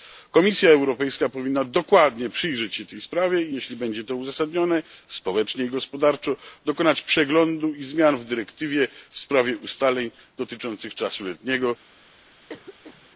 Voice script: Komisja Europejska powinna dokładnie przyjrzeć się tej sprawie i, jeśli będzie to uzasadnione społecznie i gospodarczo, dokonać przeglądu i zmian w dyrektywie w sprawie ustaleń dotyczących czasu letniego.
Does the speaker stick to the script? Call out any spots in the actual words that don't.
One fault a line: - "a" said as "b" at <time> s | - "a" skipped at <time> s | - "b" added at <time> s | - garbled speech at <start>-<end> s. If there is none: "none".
none